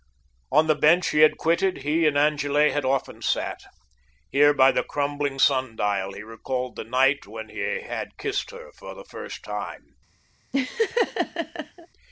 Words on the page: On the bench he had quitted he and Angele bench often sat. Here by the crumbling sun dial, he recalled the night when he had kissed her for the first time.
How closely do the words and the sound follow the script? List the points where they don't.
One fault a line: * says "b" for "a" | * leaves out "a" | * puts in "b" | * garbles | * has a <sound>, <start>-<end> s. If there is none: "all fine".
* says "had" for "bench"
* has a laugh, 10.5-11.9 s